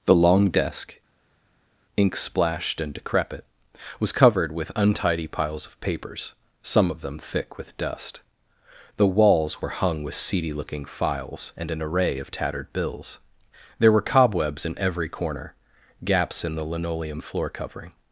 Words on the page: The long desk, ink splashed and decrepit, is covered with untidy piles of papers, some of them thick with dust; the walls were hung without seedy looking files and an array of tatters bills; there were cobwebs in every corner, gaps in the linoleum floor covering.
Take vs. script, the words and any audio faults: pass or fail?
fail